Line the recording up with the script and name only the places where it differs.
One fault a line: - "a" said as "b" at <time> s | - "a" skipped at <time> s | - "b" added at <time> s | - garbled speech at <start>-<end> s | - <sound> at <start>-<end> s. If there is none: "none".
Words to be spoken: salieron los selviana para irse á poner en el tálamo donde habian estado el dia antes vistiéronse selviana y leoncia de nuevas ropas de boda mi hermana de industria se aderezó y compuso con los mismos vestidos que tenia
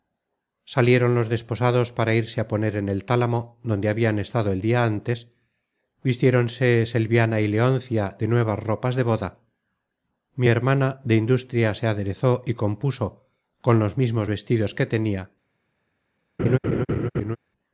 - "selviana" said as "desposados" at 1.3 s
- laugh at 16.4-17.4 s